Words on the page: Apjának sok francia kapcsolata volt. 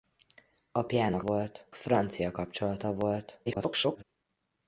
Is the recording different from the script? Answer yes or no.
yes